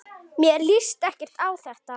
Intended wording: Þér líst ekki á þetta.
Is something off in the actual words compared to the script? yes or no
yes